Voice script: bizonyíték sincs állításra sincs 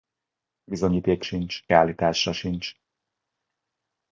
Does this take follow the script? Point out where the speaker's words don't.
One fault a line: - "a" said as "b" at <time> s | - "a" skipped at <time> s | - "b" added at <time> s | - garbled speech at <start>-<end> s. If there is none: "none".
none